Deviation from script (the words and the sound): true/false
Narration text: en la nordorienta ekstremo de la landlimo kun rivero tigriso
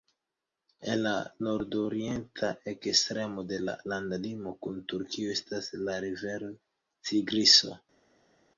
true